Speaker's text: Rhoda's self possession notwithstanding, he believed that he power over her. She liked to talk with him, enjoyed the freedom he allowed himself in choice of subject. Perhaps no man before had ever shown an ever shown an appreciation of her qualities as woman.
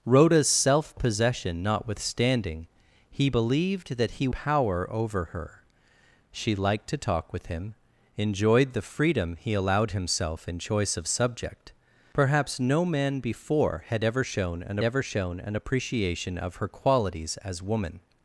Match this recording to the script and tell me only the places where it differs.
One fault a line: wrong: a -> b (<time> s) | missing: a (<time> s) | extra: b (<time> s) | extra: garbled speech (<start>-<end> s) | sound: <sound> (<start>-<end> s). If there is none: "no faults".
no faults